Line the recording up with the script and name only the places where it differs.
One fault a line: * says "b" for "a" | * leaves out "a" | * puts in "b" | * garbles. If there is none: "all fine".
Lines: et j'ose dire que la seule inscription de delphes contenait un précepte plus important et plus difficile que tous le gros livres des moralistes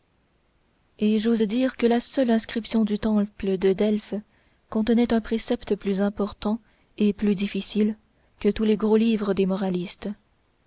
* puts in "du temple"
* says "les" for "le"